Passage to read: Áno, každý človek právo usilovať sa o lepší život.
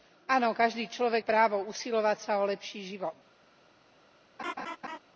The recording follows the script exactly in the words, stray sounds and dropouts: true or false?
false